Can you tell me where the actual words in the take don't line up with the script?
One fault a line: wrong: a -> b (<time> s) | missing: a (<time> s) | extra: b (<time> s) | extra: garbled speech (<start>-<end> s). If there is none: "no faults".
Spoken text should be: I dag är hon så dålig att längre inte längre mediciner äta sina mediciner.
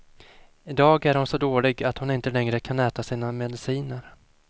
wrong: längre -> hon (2.0 s)
wrong: mediciner -> kan (2.6 s)